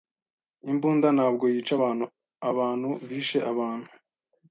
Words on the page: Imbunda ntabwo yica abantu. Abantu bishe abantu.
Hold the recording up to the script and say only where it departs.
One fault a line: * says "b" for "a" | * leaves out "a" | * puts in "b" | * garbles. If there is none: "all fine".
all fine